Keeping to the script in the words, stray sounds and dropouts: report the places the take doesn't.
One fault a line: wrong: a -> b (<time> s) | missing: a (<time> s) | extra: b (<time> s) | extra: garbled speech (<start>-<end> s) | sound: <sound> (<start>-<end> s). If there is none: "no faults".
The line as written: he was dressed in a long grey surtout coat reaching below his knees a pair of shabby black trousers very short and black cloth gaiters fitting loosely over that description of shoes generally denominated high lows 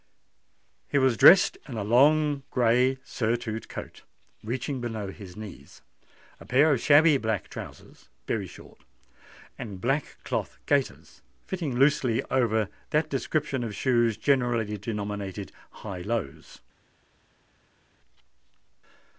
no faults